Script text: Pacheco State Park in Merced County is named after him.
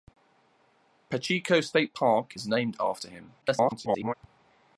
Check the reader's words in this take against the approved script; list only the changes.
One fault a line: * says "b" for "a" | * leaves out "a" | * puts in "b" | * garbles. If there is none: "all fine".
* leaves out "in Merced County"
* garbles